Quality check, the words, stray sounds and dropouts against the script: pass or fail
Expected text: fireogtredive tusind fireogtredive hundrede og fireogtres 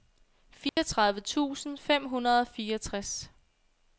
fail